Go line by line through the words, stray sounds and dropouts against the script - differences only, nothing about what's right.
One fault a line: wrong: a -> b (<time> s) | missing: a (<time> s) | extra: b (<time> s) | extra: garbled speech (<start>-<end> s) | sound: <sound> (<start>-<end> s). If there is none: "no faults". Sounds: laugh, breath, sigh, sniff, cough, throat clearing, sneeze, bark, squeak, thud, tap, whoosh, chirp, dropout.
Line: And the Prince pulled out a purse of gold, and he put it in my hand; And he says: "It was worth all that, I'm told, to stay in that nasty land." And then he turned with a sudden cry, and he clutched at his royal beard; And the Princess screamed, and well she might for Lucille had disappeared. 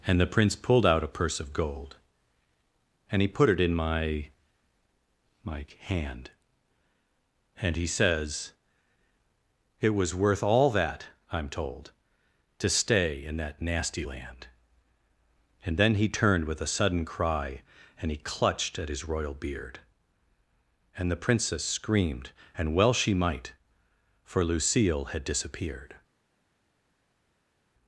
extra: my (5.4 s)